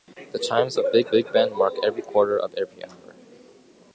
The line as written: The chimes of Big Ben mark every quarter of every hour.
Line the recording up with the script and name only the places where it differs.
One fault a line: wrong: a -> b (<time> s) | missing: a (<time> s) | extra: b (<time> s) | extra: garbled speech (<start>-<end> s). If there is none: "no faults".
extra: Big (1.1 s)